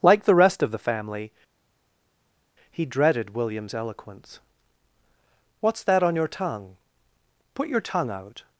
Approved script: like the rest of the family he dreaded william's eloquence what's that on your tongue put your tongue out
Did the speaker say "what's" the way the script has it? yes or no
yes